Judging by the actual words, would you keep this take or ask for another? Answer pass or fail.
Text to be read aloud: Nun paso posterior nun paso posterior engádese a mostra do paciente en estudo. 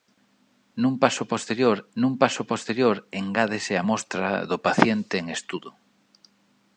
pass